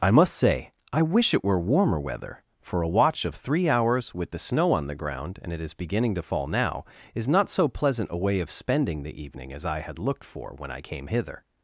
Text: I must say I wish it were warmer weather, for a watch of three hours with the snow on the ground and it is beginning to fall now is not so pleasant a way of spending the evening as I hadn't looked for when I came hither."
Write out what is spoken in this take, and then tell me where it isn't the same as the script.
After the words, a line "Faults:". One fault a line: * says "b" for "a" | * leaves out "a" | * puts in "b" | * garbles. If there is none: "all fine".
I must say I wish it were warmer weather, for a watch of three hours with the snow on the ground and it is beginning to fall now is not so pleasant a way of spending the evening as I had looked for when I came hither."
Faults:
* says "had" for "hadn't"